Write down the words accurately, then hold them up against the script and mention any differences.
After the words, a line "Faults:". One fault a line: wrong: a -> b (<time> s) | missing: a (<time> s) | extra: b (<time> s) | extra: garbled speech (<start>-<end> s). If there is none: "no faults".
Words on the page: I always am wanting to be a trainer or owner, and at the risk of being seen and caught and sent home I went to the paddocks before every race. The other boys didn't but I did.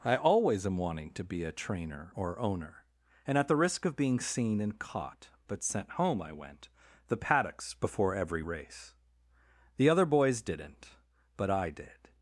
I always am wanting to be a trainer or owner, and at the risk of being seen and caught but sent home I went the paddocks before every race. The other boys didn't but I did.
Faults:
wrong: and -> but (5.5 s)
missing: to (6.7 s)